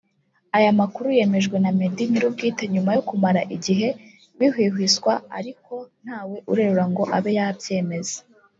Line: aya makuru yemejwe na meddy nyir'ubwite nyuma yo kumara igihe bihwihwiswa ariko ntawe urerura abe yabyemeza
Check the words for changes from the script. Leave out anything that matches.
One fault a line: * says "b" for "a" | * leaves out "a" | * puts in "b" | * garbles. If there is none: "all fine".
* puts in "ngo"